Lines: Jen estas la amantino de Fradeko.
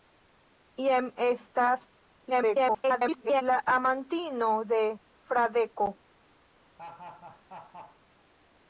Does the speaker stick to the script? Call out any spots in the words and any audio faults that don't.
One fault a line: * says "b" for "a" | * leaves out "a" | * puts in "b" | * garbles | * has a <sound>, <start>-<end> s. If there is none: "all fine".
* garbles
* has a laugh, 6.8-8.0 s